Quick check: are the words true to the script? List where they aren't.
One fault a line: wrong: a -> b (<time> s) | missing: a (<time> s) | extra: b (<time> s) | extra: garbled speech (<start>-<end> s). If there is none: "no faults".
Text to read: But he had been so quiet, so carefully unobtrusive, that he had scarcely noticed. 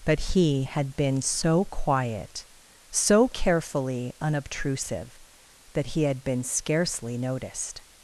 extra: been (6.2 s)